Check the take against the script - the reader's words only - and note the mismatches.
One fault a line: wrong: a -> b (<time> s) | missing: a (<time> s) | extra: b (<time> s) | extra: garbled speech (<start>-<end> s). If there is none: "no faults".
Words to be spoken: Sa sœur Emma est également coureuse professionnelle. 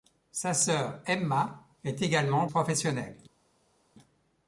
missing: coureuse (2.5 s)